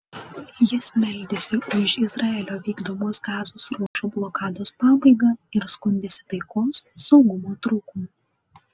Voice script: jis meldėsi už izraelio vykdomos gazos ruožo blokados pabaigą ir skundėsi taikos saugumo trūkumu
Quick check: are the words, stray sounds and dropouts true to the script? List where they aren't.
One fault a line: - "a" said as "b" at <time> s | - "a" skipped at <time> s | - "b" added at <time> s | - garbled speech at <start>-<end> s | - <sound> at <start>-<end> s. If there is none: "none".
- dropout at 3.9-4.0 s